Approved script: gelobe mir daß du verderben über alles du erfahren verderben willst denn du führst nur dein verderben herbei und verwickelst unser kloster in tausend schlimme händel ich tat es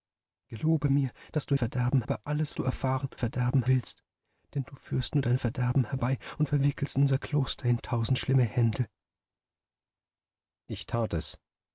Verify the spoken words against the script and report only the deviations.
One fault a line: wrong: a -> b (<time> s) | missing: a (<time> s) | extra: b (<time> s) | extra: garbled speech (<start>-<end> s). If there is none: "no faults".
no faults